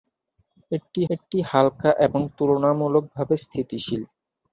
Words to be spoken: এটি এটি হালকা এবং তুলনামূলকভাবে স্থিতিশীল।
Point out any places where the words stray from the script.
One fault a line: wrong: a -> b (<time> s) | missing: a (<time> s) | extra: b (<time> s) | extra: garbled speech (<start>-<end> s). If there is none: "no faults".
no faults